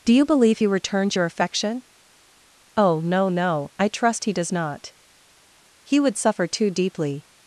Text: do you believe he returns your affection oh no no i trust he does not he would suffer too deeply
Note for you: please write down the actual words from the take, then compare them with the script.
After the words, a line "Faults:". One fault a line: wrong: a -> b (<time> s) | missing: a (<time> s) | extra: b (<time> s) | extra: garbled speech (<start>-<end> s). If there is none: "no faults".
do you believe he returns your affection oh no no i trust he does not he would suffer too deeply
Faults:
no faults